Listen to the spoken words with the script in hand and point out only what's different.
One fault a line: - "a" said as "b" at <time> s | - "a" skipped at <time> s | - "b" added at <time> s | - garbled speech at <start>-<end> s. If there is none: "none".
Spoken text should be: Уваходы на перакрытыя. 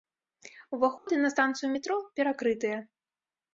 - "станцыю метро" added at 1.3 s